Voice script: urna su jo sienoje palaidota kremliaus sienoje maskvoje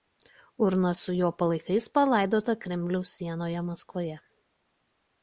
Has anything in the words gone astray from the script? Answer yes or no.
yes